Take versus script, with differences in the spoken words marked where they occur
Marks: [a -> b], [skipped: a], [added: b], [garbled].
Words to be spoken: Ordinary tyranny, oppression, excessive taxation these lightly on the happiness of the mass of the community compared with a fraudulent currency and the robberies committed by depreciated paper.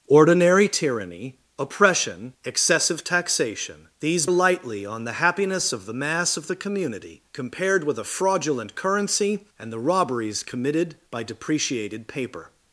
Ordinary tyranny, oppression, excessive taxation these lightly on the happiness of the mass of the community compared with a fraudulent currency and the robberies committed by depreciated paper.